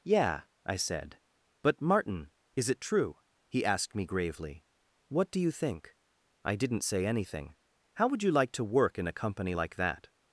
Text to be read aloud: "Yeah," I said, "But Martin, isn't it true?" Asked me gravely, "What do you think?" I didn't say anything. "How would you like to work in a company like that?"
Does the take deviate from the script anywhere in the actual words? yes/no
yes